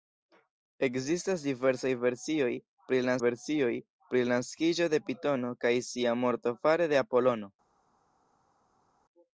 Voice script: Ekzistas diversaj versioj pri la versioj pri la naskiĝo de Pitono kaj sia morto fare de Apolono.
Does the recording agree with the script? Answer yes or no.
yes